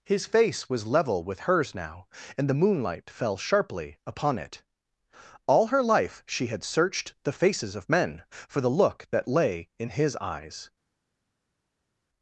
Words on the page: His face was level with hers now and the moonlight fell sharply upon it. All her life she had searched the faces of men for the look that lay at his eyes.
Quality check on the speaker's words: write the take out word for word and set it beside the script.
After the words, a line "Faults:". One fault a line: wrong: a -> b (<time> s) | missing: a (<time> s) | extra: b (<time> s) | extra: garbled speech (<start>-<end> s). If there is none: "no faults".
His face was level with hers now and the moonlight fell sharply upon it. All her life she had searched the faces of men for the look that lay in his eyes.
Faults:
wrong: at -> in (9.8 s)